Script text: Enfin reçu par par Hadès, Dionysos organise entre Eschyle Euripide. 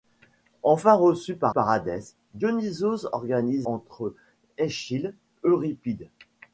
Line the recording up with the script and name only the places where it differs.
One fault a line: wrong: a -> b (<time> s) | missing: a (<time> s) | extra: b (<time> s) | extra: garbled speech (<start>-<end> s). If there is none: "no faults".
no faults